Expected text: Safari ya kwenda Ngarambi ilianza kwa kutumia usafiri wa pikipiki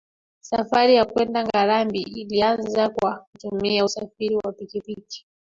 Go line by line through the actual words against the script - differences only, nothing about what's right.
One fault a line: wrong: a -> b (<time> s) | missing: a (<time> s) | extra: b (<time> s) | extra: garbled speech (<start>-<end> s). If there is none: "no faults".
no faults